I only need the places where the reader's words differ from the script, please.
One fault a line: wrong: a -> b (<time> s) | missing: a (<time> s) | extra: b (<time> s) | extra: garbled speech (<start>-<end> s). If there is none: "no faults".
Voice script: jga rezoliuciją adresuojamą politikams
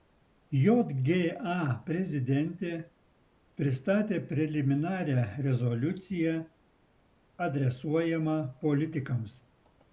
extra: prezidentė pristatė preliminarią (1.9 s)